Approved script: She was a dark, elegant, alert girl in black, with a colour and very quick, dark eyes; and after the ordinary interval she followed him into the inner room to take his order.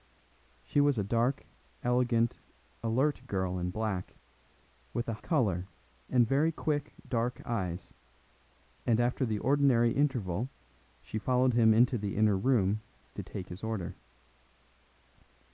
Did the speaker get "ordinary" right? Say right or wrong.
right